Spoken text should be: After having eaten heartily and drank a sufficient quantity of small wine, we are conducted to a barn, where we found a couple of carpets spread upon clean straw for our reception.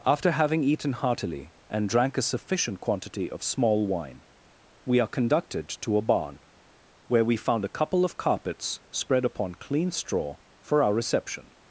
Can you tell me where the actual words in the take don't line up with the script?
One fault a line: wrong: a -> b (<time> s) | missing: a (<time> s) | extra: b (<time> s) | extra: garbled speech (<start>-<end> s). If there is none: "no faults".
no faults